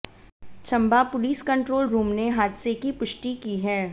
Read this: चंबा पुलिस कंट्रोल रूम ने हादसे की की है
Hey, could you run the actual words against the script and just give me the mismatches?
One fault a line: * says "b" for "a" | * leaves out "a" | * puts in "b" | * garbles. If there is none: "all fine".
* puts in "पुष्टि"